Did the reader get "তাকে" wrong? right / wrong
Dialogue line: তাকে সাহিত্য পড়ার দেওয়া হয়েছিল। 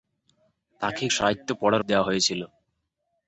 right